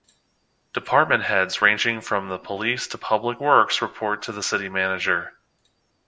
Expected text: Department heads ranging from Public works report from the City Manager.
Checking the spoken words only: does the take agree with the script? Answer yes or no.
no